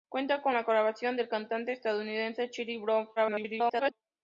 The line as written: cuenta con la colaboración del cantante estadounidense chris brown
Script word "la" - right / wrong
right